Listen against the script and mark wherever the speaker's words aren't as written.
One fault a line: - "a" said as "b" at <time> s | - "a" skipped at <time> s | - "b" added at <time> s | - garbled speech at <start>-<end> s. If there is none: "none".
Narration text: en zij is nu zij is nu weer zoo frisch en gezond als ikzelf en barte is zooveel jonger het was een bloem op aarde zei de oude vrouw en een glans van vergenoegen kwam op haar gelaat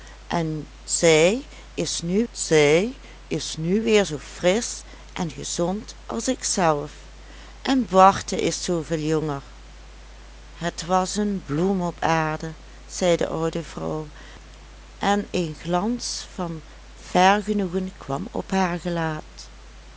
none